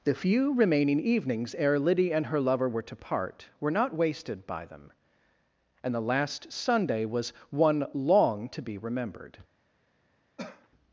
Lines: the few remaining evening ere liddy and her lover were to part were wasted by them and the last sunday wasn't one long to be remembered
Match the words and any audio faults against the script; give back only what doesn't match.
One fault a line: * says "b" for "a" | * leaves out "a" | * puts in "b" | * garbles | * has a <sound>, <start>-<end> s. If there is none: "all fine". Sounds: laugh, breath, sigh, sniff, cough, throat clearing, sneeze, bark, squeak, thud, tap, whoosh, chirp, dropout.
* says "evenings" for "evening"
* puts in "not"
* says "was" for "wasn't"
* has a cough, 10.4-10.7 s